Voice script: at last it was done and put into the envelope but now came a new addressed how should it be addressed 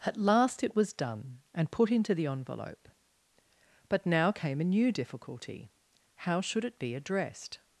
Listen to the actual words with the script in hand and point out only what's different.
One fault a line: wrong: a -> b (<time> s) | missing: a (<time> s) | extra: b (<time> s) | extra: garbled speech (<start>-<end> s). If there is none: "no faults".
wrong: addressed -> difficulty (4.9 s)